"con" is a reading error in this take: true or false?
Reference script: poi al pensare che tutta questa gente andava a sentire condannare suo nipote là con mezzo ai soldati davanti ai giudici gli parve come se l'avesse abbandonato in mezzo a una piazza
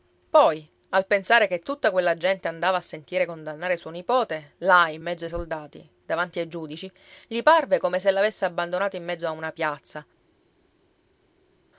true